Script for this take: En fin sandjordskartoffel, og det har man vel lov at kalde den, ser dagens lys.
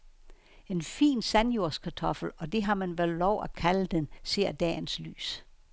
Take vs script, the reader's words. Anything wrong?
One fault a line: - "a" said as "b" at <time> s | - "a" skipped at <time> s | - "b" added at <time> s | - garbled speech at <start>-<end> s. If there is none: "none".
none